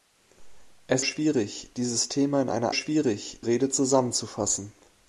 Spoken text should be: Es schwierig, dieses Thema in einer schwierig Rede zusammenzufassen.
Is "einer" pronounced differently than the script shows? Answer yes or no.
no